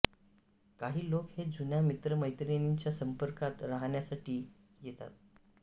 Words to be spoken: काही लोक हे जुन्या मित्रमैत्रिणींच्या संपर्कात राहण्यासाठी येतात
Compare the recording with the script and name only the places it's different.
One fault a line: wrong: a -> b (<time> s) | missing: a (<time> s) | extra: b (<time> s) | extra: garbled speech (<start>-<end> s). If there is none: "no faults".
no faults